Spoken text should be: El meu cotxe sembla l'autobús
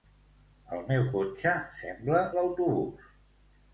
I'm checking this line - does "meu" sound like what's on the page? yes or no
yes